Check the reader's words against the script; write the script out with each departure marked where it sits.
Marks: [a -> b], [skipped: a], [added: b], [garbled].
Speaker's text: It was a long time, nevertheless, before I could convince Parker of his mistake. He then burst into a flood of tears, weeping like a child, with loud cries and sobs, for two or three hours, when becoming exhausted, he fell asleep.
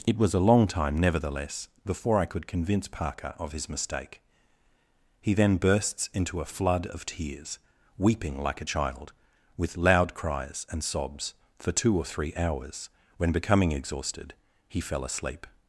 It was a long time, nevertheless, before I could convince Parker of his mistake. He then [burst -> bursts] into a flood of tears, weeping like a child, with loud cries and sobs, for two or three hours, when becoming exhausted, he fell asleep.